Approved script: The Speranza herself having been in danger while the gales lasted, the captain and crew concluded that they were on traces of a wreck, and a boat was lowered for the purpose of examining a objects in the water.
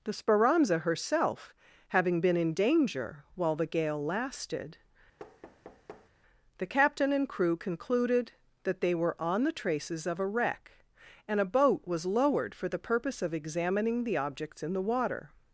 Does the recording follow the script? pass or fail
fail